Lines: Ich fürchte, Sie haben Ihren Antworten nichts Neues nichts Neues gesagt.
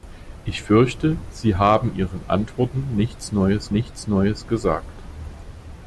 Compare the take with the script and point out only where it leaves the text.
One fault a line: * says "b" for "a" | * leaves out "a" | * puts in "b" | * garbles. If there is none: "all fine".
all fine